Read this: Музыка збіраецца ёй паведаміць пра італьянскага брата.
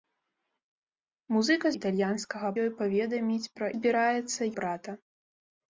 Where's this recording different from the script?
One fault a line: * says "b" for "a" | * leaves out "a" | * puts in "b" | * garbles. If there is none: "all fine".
* says "італьянскага" for "збіраецца"
* says "збіраецца" for "італьянскага"